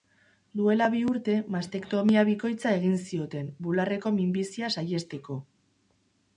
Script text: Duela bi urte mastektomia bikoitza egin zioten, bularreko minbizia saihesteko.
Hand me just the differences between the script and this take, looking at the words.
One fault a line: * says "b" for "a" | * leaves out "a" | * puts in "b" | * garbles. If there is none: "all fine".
all fine